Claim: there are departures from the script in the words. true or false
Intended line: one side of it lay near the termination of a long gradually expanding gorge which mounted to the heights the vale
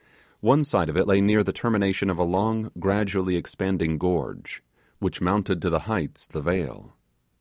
false